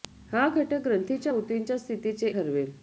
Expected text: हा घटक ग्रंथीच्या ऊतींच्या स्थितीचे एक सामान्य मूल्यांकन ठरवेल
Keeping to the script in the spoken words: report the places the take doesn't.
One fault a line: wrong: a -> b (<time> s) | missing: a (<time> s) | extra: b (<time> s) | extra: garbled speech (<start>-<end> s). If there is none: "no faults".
missing: एक सामान्य मूल्यांकन (2.3 s)